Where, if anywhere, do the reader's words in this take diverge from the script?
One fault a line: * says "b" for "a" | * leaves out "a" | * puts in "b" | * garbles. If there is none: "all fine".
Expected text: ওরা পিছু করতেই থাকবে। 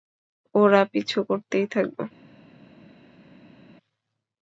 all fine